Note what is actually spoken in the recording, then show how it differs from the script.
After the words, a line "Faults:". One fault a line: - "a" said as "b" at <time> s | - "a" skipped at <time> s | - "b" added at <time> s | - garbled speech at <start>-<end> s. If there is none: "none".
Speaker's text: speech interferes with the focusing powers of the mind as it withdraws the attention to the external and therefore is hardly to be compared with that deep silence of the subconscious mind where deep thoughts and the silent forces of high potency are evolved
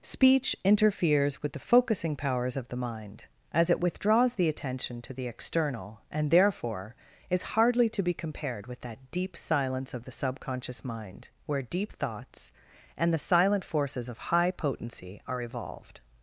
speech interferes with the focusing powers of the mind as it withdraws the attention to the external and therefore is hardly to be compared with that deep silence of the subconscious mind where deep thoughts and the silent forces of high potency are evolved
Faults:
none